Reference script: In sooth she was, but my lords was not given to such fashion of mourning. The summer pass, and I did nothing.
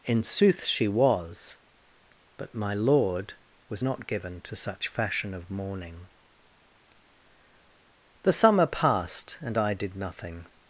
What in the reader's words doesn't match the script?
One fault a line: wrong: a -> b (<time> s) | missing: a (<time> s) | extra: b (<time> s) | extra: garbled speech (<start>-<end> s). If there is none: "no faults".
wrong: lords -> lord (2.7 s)
wrong: pass -> passed (8.7 s)